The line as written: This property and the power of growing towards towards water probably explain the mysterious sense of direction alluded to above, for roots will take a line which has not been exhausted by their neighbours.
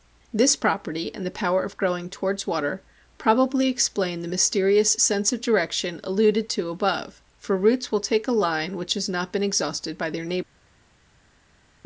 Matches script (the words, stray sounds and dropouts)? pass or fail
fail